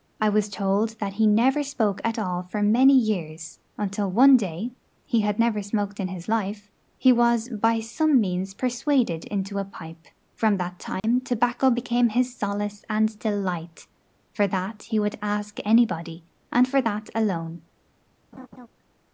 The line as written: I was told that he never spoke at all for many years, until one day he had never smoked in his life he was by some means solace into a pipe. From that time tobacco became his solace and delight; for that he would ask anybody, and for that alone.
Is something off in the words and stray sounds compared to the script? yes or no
yes